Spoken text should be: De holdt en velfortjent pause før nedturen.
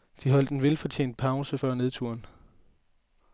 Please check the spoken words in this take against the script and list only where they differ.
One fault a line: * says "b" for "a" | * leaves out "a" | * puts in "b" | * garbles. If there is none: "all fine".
all fine